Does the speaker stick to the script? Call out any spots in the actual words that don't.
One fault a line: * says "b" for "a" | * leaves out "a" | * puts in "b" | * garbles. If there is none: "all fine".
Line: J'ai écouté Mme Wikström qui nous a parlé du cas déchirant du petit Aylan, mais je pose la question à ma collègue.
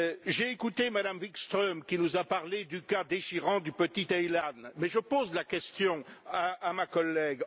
all fine